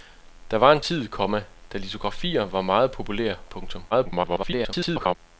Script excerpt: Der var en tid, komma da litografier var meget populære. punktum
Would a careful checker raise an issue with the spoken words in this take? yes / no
yes